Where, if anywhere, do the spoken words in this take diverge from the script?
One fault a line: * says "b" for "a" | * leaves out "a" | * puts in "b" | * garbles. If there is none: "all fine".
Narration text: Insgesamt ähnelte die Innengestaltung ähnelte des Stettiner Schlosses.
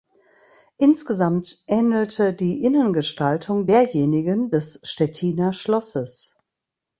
* says "derjenigen" for "ähnelte"